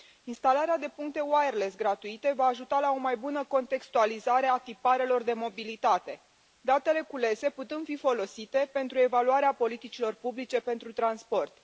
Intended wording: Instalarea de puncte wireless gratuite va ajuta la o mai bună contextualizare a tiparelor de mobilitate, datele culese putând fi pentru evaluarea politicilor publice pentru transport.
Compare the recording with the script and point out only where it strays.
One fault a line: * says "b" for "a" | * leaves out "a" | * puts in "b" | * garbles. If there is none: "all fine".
* puts in "folosite"